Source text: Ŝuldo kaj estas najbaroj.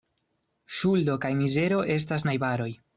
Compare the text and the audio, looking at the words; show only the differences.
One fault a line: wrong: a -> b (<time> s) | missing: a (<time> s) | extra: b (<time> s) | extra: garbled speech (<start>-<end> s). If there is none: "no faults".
extra: mizero (1.4 s)